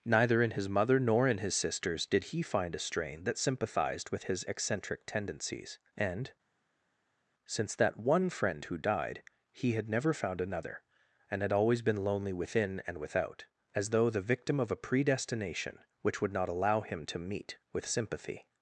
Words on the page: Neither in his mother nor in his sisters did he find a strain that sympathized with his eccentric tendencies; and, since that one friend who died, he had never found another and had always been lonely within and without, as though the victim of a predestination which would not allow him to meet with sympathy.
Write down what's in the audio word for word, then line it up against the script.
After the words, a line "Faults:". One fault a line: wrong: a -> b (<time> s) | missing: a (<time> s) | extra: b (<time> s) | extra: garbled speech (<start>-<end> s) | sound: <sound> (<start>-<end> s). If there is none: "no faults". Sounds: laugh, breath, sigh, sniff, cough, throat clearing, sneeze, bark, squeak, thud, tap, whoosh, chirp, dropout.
Neither in his mother nor in his sisters did he find a strain that sympathized with his eccentric tendencies; and, since that one friend who died, he had never found another and had always been lonely within and without, as though the victim of a predestination which would not allow him to meet with sympathy.
Faults:
no faults